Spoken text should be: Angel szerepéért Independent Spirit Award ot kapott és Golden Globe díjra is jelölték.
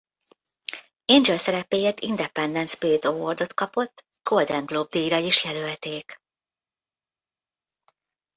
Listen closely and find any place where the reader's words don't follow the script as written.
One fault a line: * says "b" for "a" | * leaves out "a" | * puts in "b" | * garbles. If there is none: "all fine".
* leaves out "és"